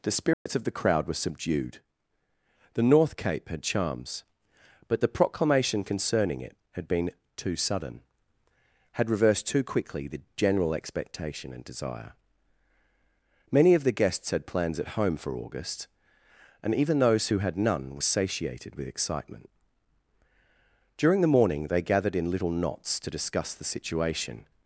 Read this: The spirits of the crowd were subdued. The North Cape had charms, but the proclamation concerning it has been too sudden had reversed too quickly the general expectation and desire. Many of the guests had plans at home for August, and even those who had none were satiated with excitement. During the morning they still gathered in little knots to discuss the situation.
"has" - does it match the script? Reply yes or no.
no